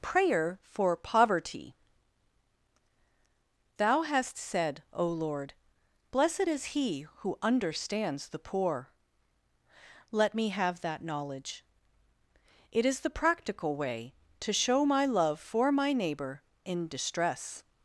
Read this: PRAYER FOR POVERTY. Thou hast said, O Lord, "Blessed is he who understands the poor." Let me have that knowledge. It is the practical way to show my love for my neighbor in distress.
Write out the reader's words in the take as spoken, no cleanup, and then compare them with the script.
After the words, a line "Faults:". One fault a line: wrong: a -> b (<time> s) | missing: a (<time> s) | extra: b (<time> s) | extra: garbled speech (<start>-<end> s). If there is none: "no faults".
PRAYER FOR POVERTY. Thou hast said, O Lord, "Blessed is he who understands the poor." Let me have that knowledge. It is the practical way to show my love for my neighbor in distress.
Faults:
no faults